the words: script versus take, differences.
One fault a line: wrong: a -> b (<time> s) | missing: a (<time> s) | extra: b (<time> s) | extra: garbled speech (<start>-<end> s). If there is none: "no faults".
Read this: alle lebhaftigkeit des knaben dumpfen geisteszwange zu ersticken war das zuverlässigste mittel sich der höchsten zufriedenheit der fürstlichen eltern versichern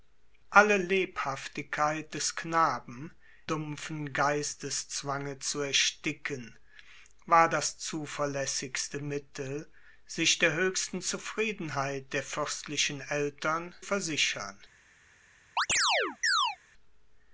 no faults